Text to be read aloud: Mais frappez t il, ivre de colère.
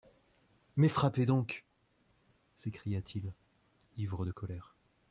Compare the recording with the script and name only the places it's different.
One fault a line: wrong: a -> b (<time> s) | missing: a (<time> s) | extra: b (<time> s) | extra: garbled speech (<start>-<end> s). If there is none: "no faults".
extra: donc s'écria (1.3 s)